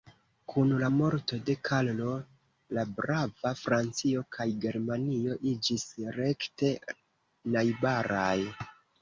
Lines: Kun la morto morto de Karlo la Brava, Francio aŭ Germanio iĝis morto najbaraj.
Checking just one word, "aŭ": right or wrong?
wrong